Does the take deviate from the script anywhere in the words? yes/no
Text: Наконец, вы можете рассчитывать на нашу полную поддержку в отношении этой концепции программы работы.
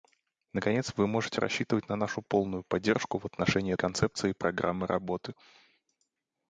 yes